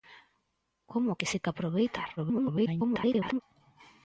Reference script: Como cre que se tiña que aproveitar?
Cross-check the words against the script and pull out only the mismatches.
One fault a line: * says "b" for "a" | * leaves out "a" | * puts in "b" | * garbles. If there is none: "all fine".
* leaves out "cre"
* leaves out "tiña"
* garbles